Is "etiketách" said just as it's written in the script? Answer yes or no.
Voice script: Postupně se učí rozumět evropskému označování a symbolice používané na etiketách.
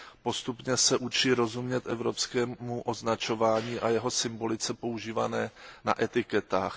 yes